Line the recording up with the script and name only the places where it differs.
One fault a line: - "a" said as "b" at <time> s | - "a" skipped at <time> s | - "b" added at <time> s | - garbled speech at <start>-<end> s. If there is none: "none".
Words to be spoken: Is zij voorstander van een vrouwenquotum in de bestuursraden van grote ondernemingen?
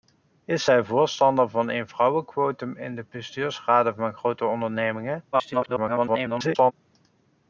- garbled speech at 5.3-6.7 s